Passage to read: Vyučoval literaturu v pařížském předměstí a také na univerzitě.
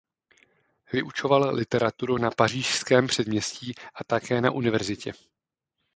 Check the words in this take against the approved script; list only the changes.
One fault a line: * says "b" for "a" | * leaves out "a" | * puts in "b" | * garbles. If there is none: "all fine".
* says "na" for "v"